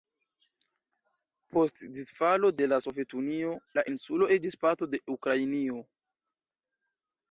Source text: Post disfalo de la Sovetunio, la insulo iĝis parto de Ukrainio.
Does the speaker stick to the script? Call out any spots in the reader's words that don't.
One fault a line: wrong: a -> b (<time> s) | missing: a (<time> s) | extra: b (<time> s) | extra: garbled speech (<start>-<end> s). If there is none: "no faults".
no faults